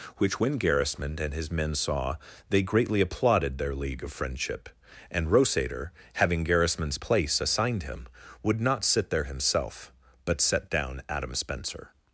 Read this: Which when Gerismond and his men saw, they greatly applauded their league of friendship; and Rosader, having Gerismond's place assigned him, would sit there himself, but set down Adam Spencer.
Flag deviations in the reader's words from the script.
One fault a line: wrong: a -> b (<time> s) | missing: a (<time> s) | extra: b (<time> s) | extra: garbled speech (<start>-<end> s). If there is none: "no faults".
extra: not (8.6 s)